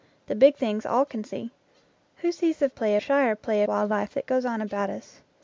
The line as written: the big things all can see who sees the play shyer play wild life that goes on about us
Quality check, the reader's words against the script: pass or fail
pass